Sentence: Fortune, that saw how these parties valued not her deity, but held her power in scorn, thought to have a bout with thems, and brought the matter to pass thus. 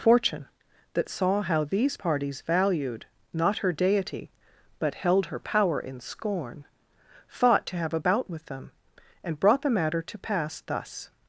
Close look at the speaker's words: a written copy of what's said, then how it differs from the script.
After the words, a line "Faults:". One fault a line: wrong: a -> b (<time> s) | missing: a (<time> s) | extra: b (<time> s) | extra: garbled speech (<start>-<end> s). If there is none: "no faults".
Fortune, that saw how these parties valued not her deity, but held her power in scorn, thought to have a bout with them, and brought the matter to pass thus.
Faults:
wrong: thems -> them (8.4 s)